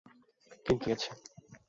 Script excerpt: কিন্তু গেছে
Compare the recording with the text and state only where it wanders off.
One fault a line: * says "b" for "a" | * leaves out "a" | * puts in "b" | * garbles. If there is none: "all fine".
all fine